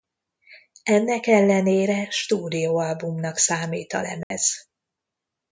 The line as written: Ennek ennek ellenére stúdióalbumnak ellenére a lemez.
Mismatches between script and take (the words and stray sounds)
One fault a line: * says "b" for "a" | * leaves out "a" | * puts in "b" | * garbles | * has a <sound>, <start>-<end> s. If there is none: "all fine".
* leaves out "ennek"
* says "számít" for "ellenére"
* has a dropout, 4.2-4.3 s